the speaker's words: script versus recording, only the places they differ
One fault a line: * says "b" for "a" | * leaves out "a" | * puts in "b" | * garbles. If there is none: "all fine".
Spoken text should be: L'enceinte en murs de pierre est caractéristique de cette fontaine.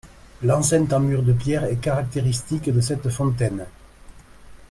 all fine